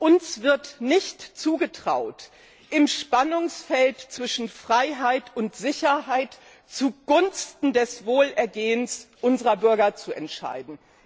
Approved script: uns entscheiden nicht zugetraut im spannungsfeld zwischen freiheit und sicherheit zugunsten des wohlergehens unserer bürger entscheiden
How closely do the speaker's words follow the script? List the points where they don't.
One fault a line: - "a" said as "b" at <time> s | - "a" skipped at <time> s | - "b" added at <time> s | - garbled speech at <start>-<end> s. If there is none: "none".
- "entscheiden" said as "wird" at 0.4 s
- "zu" added at 9.9 s